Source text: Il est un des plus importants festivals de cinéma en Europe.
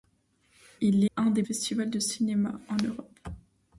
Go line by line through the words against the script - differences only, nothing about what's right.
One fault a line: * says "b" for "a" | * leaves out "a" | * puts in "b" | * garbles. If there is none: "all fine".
* leaves out "est"
* leaves out "plus importants"